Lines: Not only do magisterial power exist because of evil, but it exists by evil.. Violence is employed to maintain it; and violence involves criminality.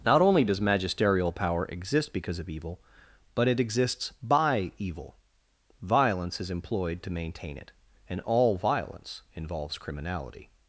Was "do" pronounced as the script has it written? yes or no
no